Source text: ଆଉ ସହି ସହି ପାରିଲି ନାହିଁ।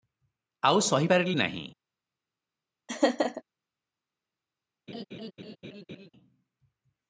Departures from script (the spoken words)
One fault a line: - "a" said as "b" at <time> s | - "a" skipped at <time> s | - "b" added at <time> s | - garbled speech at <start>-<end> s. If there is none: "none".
- "ସହି" skipped at 1.1 s